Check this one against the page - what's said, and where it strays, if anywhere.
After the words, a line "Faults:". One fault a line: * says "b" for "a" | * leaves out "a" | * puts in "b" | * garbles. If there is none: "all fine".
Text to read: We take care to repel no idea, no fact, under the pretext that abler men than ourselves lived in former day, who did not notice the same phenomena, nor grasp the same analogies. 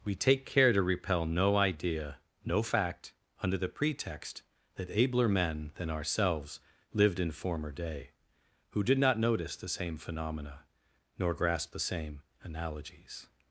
We take care to repel no idea, no fact, under the pretext that abler men than ourselves lived in former day, who did not notice the same phenomena, nor grasp the same analogies.
Faults:
all fine